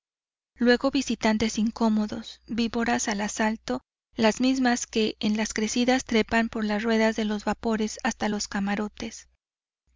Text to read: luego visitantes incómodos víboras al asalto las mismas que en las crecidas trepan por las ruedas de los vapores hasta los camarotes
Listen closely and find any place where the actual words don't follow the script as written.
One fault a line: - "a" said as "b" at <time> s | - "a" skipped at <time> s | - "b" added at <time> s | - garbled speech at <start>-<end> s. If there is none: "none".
none